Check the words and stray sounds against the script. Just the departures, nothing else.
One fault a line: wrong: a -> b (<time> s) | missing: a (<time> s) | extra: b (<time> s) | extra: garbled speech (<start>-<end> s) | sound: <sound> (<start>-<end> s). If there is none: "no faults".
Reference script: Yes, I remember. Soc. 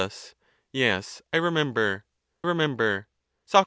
extra: remember (2.4 s)